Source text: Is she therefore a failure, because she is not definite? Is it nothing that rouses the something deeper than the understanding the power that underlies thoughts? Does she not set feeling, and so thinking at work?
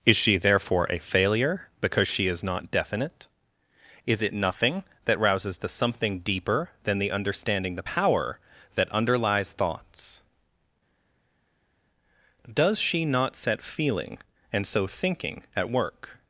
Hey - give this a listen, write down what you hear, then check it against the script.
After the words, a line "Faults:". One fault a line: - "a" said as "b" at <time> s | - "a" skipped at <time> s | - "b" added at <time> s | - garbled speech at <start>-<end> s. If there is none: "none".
Is she therefore a failure, because she is not definite? Is it nothing that rouses the something deeper than the understanding the power that underlies thoughts? Does she not set feeling, and so thinking at work?
Faults:
none